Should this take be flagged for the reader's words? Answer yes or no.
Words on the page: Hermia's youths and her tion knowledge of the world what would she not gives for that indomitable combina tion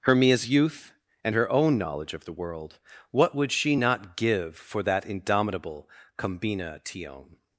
yes